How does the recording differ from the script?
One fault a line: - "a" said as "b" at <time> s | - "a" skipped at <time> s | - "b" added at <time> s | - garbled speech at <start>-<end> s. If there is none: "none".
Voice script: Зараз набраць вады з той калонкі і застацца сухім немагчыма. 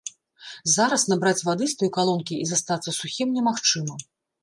none